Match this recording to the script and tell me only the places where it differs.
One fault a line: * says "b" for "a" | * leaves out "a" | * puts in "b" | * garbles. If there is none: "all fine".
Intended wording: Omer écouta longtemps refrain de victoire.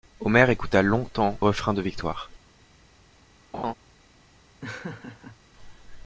all fine